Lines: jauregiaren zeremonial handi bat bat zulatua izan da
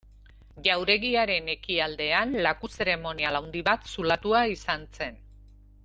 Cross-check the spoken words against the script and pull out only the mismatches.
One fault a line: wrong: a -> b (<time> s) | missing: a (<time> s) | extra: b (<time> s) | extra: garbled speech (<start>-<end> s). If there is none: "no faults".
extra: ekialdean laku (1.5 s)
missing: bat (3.9 s)
wrong: da -> zen (5.0 s)